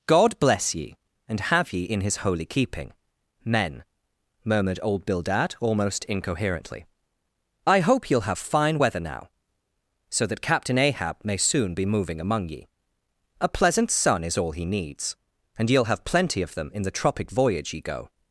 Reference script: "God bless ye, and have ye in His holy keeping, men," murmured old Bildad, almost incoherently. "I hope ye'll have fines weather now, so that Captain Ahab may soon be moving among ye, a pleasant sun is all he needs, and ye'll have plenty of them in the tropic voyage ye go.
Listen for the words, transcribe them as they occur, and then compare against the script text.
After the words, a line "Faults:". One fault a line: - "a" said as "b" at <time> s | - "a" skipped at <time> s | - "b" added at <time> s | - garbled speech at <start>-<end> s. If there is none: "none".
"God bless ye, and have ye in His holy keeping, men," murmured old Bildad, almost incoherently. "I hope ye'll have fine weather now, so that Captain Ahab may soon be moving among ye, a pleasant sun is all he needs, and ye'll have plenty of them in the tropic voyage ye go.
Faults:
- "fines" said as "fine" at 8.4 s